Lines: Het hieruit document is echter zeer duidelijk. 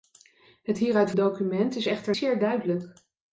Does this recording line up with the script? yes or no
yes